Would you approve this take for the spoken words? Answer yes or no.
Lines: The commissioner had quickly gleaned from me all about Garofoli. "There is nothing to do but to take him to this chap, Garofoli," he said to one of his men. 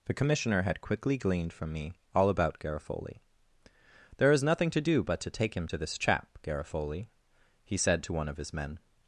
yes